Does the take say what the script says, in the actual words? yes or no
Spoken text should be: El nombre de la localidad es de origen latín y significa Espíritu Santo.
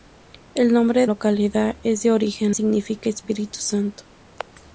no